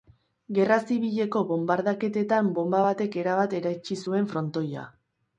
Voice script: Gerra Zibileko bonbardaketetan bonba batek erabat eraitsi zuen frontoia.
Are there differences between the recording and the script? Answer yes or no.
no